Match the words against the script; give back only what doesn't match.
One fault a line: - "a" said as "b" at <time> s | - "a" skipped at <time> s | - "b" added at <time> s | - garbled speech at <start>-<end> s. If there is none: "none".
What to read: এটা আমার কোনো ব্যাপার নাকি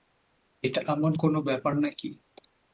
none